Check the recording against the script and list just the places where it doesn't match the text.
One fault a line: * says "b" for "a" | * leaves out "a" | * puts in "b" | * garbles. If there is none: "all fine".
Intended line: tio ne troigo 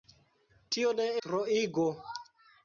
all fine